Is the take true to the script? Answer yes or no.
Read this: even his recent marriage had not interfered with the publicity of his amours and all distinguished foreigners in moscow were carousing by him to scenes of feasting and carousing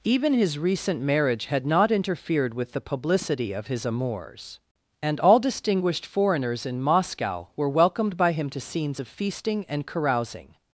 no